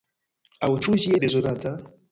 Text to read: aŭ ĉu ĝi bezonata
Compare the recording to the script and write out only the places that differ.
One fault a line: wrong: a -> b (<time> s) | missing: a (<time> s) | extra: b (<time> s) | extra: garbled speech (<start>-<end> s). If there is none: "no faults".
no faults